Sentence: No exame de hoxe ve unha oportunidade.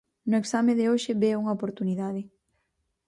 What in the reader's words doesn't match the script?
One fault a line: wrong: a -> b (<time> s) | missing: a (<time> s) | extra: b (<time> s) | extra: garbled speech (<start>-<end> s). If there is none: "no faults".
no faults